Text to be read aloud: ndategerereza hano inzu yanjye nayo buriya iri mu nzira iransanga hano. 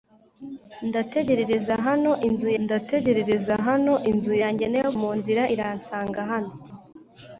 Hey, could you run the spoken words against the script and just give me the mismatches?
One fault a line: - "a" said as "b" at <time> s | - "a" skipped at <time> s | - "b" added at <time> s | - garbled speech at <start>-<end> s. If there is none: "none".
- "ndategerereza hano inzu" added at 2.6 s
- "buriya iri" skipped at 4.9 s